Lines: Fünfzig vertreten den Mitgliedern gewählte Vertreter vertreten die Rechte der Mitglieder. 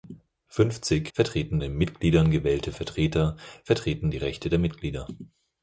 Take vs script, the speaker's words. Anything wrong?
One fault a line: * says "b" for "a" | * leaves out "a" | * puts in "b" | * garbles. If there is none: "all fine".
all fine